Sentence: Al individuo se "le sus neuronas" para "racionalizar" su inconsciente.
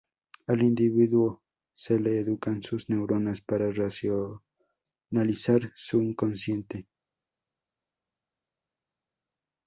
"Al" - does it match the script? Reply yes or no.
yes